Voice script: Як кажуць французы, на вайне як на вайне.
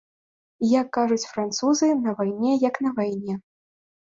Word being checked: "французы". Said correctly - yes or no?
yes